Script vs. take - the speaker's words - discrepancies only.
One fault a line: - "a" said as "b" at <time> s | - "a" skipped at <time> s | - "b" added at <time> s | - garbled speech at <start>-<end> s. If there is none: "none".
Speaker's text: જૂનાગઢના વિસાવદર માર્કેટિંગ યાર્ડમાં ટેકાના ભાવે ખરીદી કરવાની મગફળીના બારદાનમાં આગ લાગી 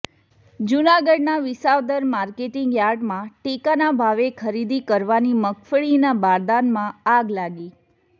none